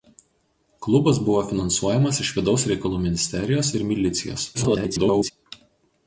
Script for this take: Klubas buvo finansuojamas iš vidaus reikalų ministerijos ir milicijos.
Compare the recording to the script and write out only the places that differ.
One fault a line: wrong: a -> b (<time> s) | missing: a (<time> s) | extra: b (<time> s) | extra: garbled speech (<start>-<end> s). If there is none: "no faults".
extra: garbled speech (4.5-5.3 s)